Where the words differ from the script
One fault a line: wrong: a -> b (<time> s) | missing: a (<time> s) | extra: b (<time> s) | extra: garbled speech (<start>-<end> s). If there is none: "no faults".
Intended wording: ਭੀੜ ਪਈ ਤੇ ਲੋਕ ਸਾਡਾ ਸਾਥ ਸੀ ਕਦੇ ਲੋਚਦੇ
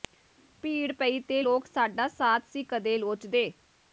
no faults